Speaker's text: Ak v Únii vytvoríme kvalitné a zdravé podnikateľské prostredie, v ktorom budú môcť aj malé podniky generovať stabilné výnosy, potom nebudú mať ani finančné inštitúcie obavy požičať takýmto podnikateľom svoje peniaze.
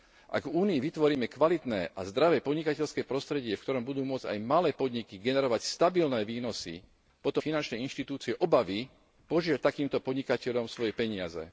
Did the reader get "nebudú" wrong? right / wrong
wrong